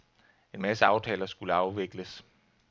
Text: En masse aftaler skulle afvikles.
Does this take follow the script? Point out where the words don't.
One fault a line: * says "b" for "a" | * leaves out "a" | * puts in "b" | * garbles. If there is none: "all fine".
all fine